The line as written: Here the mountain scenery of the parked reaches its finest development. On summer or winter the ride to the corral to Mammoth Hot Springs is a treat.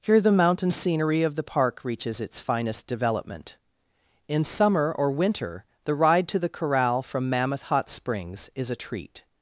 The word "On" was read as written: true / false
false